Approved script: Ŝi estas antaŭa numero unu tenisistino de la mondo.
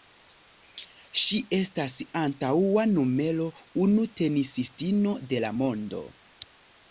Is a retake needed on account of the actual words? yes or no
no